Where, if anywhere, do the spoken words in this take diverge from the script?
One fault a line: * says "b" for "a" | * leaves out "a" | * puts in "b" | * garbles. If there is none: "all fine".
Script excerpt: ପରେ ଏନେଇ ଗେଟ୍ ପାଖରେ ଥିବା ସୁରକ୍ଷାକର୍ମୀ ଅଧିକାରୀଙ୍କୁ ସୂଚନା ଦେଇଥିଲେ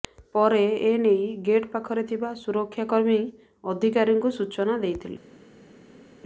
all fine